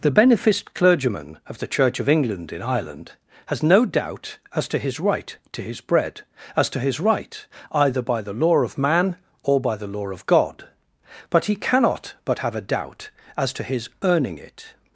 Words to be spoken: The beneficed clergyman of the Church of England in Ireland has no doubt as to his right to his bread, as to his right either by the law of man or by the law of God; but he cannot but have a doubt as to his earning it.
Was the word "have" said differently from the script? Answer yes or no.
no